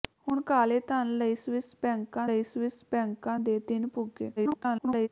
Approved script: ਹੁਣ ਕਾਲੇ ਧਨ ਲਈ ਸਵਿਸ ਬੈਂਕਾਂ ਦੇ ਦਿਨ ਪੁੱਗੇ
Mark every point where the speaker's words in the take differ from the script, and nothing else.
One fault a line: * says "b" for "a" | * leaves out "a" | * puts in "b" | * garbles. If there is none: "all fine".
* puts in "ਲਈ ਸਵਿਸ ਬੈਂਕਾਂ"
* garbles